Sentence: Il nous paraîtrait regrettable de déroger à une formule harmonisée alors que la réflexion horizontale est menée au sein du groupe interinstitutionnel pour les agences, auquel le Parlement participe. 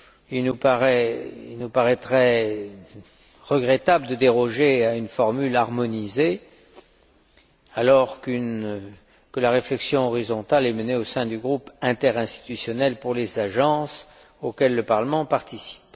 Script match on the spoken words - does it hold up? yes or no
yes